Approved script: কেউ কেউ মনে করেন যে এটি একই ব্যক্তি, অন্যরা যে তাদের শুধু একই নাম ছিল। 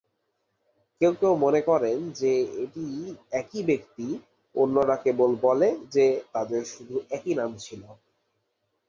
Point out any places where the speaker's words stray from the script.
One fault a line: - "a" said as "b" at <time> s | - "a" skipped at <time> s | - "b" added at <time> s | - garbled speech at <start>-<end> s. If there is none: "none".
- "কেবল বলে" added at 5.0 s